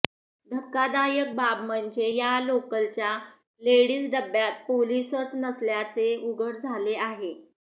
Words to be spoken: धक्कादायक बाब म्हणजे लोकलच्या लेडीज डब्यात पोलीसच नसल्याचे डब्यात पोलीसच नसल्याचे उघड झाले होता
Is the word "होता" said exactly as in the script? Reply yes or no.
no